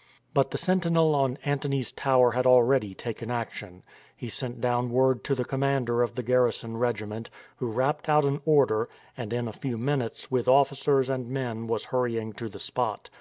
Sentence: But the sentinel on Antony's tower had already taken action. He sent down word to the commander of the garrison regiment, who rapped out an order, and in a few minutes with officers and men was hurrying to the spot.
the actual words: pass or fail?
pass